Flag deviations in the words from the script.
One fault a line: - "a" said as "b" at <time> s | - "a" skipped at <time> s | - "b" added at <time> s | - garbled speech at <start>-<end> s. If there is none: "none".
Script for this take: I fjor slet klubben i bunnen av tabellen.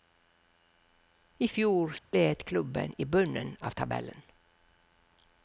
none